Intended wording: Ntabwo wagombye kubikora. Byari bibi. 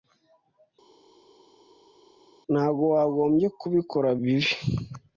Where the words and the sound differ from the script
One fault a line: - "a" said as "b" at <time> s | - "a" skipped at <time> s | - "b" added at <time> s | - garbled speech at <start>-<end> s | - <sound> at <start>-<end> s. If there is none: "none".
- "Byari" skipped at 4.1 s